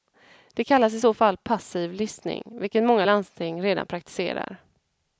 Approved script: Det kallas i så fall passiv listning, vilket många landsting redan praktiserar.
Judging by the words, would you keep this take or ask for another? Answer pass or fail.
pass